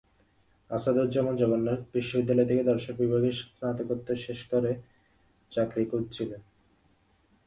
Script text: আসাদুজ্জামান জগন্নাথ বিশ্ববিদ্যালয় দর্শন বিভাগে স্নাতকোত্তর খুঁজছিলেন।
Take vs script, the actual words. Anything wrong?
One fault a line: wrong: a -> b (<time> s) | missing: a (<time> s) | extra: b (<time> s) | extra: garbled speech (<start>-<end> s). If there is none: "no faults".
extra: থেকে (2.5 s)
extra: শেষ করে চাকরি (4.2 s)